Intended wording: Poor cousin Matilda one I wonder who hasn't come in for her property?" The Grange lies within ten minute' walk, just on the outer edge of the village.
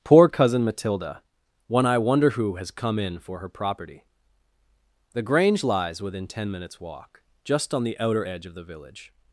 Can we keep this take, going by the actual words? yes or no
no